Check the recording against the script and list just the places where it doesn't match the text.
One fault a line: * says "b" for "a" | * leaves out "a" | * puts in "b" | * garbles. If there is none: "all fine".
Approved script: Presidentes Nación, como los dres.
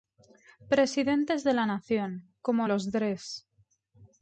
* puts in "de la"